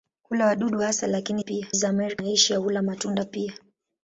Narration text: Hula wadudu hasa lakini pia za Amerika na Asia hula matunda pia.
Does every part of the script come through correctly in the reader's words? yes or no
yes